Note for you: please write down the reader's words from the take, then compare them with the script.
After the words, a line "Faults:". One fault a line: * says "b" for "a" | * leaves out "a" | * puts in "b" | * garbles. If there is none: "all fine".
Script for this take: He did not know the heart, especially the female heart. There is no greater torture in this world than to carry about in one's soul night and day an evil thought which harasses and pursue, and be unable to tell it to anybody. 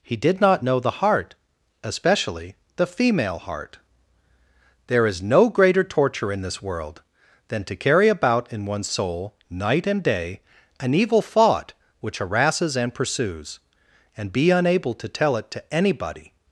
He did not know the heart, especially the female heart. There is no greater torture in this world than to carry about in one's soul night and day an evil thought which harasses and pursues, and be unable to tell it to anybody.
Faults:
* says "pursues" for "pursue"